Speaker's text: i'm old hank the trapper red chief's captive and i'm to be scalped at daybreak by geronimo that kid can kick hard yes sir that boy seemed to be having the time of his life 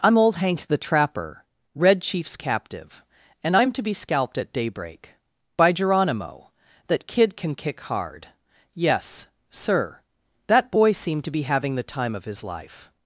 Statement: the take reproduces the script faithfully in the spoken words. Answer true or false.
true